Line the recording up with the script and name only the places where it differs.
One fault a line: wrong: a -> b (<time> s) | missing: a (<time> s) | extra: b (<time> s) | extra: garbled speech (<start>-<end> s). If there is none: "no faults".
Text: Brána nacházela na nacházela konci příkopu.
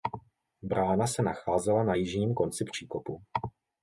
extra: se (1.1 s)
wrong: nacházela -> jižním (1.9 s)